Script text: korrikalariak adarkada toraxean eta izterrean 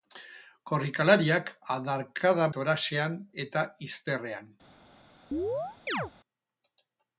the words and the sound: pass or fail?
fail